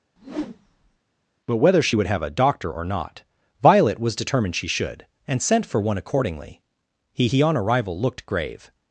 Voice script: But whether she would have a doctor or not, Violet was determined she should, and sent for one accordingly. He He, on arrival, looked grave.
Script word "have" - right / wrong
right